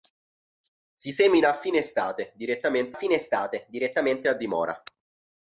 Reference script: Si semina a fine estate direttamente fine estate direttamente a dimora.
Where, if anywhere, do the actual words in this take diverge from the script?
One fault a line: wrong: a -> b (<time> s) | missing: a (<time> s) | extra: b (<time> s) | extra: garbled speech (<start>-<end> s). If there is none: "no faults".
no faults